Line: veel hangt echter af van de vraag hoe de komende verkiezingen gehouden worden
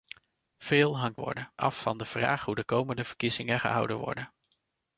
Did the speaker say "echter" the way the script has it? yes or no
no